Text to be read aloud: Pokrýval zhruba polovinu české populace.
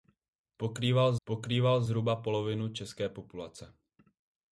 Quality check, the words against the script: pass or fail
fail